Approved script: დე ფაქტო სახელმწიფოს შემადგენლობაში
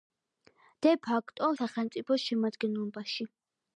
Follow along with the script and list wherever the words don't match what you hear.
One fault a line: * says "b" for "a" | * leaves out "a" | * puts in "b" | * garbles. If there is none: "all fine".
all fine